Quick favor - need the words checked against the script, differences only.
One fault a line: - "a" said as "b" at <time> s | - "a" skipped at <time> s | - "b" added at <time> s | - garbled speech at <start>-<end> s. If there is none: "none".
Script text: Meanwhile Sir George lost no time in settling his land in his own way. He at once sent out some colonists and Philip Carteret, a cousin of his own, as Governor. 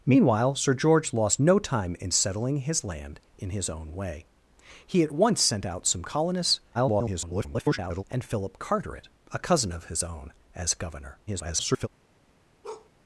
- garbled speech at 6.7-8.0 s
- garbled speech at 11.3-11.9 s